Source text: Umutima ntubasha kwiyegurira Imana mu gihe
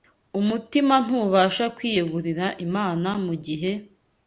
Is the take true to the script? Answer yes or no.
yes